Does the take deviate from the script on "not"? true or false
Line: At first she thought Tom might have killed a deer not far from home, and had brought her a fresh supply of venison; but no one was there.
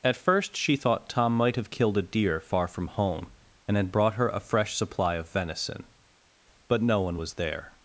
true